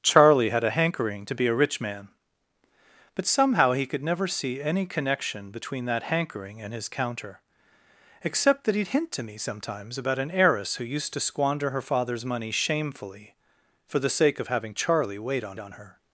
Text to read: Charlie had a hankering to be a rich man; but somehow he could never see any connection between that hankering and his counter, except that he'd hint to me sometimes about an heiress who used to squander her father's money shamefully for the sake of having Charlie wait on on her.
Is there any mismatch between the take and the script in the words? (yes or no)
no